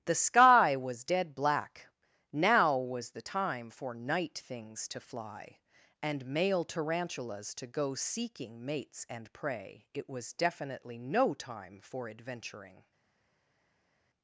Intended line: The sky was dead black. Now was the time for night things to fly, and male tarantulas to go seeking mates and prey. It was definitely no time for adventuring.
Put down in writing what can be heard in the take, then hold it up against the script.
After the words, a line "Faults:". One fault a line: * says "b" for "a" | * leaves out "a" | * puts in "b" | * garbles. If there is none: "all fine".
The sky was dead black. Now was the time for night things to fly, and male tarantulas to go seeking mates and prey. It was definitely no time for adventuring.
Faults:
all fine